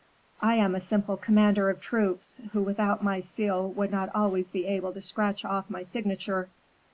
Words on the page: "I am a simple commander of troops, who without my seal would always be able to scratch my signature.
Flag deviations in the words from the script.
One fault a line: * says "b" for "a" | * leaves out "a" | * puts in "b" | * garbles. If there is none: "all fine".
* puts in "not"
* puts in "off"